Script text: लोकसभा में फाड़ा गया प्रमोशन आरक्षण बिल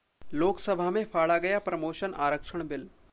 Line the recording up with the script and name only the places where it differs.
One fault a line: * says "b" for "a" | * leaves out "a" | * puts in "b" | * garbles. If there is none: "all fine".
all fine